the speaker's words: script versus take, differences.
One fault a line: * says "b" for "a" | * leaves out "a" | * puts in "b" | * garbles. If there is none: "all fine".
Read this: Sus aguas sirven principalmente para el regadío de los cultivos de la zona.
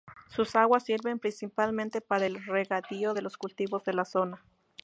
all fine